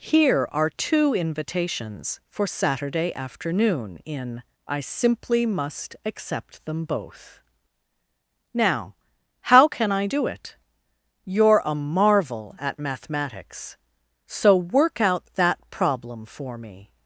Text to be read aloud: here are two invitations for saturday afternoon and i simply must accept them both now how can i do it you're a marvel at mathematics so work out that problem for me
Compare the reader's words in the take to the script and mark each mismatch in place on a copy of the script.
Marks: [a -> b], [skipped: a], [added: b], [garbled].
here are two invitations for saturday afternoon [and -> in] i simply must accept them both now how can i do it you're a marvel at mathematics so work out that problem for me